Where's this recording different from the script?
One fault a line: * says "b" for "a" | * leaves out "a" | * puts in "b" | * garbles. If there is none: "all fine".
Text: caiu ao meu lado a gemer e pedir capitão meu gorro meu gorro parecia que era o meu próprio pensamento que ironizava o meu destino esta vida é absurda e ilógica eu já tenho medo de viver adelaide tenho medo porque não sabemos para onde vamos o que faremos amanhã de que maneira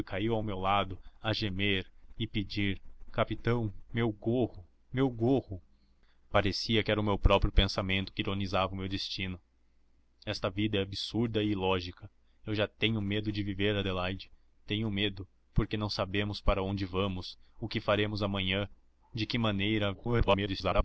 * garbles